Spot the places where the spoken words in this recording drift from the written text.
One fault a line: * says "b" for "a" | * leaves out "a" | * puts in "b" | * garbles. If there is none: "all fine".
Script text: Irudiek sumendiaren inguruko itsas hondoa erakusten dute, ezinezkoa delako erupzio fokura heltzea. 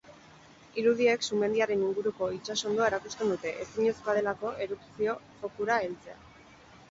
all fine